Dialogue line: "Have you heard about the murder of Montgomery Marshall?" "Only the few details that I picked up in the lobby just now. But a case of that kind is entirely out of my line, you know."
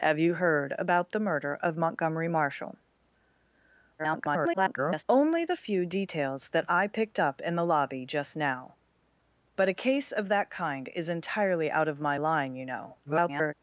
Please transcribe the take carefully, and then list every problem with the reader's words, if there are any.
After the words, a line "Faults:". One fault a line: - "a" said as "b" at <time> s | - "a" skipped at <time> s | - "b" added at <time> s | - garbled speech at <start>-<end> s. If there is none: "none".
"Have you heard about the murder of Montgomery Marshall?" [garbled] "Only the few details that I picked up in the lobby just now. But a case of that kind is entirely out of my line, you know." [garbled]
Faults:
- garbled speech at 4.0-5.0 s
- garbled speech at 13.1-13.5 s